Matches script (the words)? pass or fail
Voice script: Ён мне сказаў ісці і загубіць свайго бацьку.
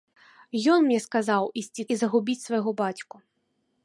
pass